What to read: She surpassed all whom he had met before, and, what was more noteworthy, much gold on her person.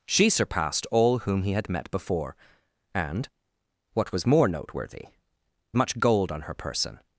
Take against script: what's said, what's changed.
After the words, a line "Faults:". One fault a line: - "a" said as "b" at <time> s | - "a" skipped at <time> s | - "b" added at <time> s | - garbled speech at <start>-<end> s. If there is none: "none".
She surpassed all whom he had met before, and, what was more noteworthy, much gold on her person.
Faults:
none